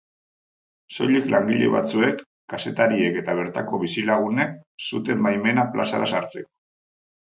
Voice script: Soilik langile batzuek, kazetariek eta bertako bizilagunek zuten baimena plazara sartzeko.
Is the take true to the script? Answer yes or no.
yes